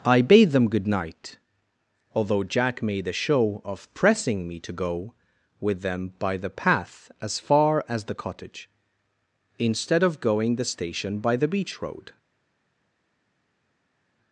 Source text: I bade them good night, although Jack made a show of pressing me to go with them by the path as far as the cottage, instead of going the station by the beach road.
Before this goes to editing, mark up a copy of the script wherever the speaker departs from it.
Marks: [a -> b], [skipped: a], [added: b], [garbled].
I bade them good night, although Jack made a show of pressing me to go with them by the path as far as the cottage, instead of going the station by the beach road.